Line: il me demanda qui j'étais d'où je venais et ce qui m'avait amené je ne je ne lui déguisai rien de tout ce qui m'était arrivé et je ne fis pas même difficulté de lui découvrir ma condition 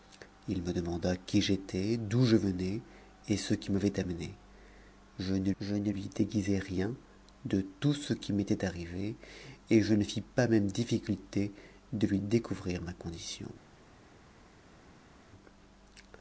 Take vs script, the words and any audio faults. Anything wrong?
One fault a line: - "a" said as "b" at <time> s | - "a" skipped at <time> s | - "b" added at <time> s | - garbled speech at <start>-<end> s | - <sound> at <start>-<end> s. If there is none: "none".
none